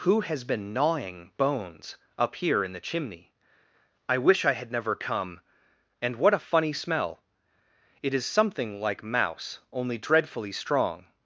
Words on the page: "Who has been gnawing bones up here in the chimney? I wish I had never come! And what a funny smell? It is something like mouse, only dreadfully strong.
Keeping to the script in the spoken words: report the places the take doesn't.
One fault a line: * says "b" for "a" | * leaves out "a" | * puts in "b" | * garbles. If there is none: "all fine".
all fine